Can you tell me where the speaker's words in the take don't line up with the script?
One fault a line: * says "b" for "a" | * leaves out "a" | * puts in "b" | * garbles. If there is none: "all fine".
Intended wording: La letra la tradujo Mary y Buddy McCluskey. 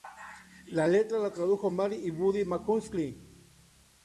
all fine